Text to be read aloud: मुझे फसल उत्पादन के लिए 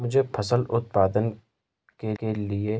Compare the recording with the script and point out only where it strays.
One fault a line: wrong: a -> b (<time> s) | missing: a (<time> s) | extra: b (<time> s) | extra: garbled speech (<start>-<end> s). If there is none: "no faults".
extra: के (2.2 s)